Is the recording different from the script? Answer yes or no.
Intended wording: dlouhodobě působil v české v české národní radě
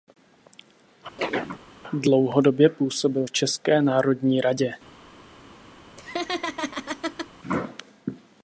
yes